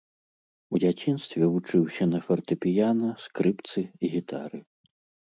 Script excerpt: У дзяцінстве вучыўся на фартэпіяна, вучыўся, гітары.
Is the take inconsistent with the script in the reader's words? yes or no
yes